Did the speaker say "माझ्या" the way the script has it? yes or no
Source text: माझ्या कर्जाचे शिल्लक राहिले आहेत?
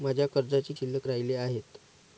yes